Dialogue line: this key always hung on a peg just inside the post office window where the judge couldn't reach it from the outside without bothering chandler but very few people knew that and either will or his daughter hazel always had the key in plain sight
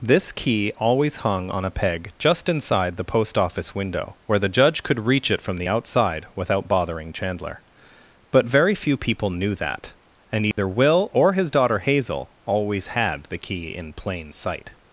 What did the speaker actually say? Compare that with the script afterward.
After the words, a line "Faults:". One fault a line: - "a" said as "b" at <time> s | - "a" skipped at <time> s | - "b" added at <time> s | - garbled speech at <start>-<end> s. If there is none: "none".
this key always hung on a peg just inside the post office window where the judge could reach it from the outside without bothering chandler but very few people knew that and either will or his daughter hazel always had the key in plain sight
Faults:
- "couldn't" said as "could" at 4.8 s